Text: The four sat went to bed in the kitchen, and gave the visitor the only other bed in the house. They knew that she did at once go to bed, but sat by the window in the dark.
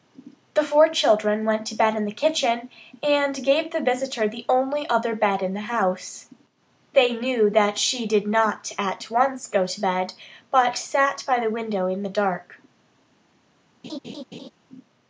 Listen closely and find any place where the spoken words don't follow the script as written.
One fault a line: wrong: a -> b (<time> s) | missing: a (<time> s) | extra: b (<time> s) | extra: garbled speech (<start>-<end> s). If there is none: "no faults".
wrong: sat -> children (0.9 s)
extra: not (8.2 s)